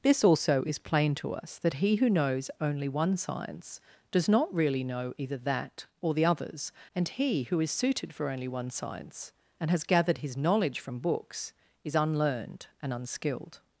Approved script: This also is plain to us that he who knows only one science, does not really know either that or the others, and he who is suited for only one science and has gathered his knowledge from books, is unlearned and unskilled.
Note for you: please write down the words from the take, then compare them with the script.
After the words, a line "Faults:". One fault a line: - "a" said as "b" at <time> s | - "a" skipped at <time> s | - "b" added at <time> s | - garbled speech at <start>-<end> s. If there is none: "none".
This also is plain to us that he who knows only one science, does not really know either that or the others, and he who is suited for only one science and has gathered his knowledge from books, is unlearned and unskilled.
Faults:
none